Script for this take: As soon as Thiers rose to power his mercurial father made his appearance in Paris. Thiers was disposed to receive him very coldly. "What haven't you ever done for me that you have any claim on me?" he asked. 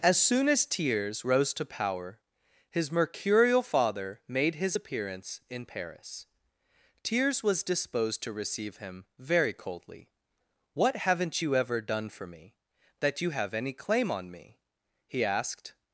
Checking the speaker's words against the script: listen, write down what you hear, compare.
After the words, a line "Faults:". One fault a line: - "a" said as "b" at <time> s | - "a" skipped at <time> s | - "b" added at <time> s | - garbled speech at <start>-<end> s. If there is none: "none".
As soon as Thiers rose to power his mercurial father made his appearance in Paris. Thiers was disposed to receive him very coldly. "What haven't you ever done for me that you have any claim on me?" he asked.
Faults:
none